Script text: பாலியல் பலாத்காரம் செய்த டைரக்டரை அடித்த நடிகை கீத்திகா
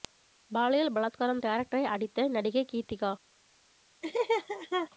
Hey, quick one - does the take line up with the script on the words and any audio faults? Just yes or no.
no